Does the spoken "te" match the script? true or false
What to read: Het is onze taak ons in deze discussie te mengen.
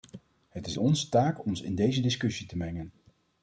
true